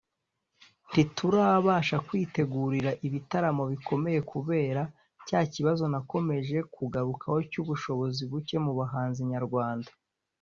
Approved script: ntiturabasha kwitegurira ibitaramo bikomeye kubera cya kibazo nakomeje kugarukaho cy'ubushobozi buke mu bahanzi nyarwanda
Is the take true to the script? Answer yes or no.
yes